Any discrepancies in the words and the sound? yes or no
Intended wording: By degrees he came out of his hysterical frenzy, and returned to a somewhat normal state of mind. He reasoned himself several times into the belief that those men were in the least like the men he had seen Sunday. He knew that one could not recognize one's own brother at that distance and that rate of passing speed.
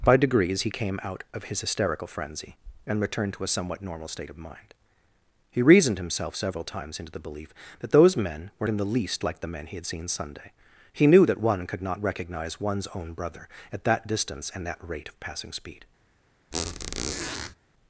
yes